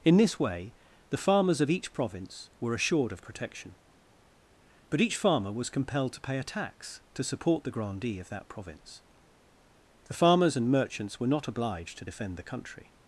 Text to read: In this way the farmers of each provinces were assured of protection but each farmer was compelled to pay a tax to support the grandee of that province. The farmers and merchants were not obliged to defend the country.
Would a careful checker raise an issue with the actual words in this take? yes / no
yes